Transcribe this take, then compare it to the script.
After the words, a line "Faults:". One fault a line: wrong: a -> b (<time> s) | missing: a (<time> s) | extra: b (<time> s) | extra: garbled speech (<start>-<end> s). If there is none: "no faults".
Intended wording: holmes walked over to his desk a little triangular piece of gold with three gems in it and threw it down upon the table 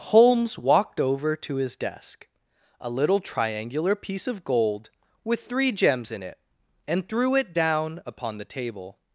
holmes walked over to his desk a little triangular piece of gold with three gems in it and threw it down upon the table
Faults:
no faults